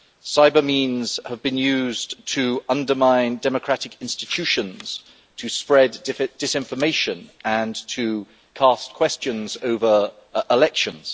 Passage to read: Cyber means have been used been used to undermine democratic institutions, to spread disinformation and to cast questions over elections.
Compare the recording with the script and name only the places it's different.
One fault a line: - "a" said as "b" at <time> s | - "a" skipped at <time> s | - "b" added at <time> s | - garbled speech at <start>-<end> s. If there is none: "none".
- "been used" skipped at 2.2 s